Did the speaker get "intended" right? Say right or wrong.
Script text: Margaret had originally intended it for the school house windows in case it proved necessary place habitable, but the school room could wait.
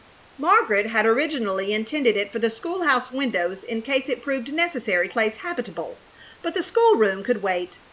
right